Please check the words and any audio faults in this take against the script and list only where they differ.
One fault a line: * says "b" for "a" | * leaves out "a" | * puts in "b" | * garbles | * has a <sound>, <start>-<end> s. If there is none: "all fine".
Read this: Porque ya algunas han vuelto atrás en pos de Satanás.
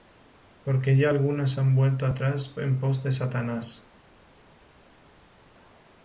all fine